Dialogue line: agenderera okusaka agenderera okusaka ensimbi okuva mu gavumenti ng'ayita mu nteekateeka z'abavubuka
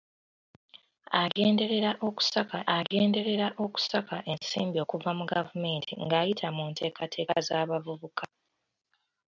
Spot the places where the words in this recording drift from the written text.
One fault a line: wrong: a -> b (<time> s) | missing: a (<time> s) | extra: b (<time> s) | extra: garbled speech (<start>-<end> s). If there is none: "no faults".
no faults